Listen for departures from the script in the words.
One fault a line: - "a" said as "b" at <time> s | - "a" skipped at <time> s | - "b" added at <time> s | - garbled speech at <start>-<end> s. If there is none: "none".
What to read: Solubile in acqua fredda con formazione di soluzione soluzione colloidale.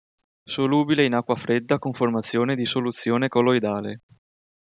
- "soluzione" skipped at 3.3 s